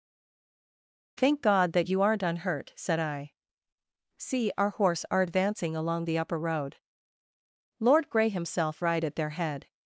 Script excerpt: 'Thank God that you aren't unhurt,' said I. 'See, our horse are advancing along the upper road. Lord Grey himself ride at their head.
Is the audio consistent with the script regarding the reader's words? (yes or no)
yes